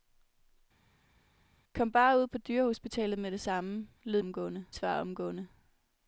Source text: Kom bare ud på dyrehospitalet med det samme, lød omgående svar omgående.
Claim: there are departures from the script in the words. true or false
false